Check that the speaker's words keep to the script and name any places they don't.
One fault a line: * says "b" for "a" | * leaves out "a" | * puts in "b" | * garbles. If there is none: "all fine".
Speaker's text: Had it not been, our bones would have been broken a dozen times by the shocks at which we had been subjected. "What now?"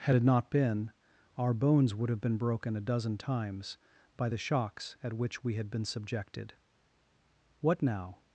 all fine